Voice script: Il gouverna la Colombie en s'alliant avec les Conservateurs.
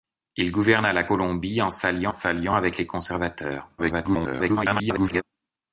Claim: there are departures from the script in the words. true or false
true